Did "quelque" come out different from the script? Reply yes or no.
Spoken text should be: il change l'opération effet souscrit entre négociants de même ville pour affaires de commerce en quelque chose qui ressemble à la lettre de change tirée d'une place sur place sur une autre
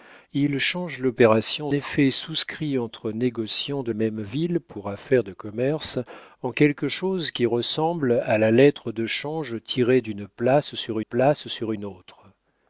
no